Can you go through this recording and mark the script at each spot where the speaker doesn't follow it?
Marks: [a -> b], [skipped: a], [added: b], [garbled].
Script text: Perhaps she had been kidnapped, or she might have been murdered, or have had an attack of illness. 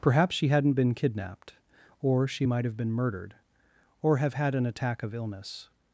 Perhaps she [had -> hadn't] been kidnapped, or she might have been murdered, or have had an attack of illness.